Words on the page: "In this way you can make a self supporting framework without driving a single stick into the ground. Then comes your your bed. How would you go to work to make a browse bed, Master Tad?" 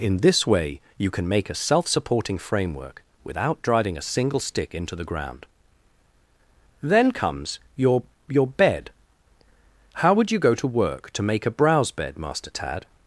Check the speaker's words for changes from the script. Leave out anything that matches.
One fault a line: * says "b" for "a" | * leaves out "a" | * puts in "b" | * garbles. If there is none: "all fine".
all fine